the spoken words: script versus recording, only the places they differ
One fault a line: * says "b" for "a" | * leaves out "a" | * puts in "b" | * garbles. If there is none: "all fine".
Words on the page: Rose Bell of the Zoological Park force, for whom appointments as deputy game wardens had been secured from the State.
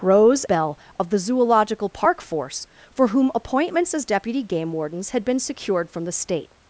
all fine